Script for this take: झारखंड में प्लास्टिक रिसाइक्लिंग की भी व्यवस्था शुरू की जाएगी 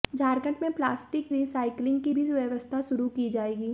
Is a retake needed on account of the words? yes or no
no